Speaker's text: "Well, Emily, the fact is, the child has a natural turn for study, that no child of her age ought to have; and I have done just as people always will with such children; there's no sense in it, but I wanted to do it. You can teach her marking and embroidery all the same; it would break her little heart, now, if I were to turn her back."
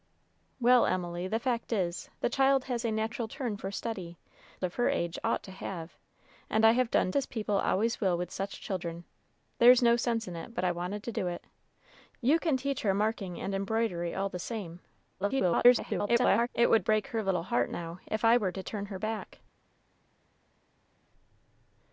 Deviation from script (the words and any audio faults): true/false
true